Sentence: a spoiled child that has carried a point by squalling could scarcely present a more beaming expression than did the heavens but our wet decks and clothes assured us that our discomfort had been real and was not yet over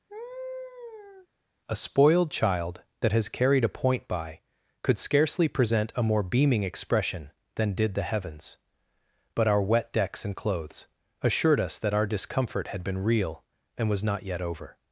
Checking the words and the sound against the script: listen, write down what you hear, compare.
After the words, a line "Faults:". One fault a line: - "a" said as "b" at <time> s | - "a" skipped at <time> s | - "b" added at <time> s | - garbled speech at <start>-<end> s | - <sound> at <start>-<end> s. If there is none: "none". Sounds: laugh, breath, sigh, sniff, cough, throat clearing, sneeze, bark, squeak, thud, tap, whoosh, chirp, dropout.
a spoiled child that has carried a point by could scarcely present a more beaming expression than did the heavens but our wet decks and clothes assured us that our discomfort had been real and was not yet over
Faults:
- laugh at 0.1-1.3 s
- "squalling" skipped at 4.4 s